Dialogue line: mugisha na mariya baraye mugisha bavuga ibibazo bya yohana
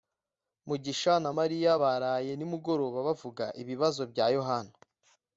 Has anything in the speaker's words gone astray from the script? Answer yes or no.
yes